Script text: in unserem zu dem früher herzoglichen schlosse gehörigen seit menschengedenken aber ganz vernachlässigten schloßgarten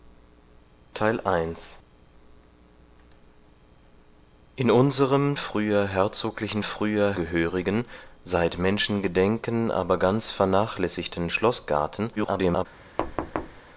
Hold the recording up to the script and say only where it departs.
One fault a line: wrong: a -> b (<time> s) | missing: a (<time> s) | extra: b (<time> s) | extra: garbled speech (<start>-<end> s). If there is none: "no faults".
missing: zu dem (5.4 s)
wrong: schlosse -> früher (6.6 s)
extra: garbled speech (12.2-12.7 s)